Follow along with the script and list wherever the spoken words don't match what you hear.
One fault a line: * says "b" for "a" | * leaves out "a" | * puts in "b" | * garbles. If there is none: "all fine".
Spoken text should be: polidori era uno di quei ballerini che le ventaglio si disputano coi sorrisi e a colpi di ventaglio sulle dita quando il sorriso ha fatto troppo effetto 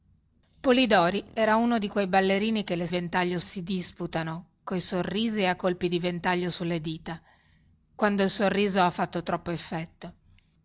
all fine